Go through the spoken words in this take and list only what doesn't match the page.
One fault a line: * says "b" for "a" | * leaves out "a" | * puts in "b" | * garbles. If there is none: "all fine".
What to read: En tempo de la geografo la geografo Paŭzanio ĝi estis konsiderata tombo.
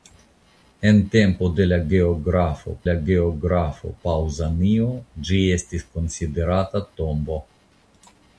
all fine